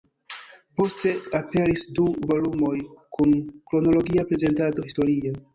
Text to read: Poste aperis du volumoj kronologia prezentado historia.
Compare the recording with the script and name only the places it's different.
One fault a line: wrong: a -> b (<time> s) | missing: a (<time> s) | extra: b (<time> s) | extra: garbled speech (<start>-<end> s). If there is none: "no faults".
extra: kun (3.2 s)